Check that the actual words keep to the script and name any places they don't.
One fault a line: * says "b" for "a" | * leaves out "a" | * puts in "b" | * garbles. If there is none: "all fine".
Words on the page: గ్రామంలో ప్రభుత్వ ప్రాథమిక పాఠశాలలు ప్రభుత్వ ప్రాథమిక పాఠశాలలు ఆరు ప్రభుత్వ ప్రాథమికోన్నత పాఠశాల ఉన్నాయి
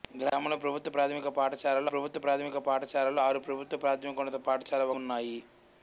all fine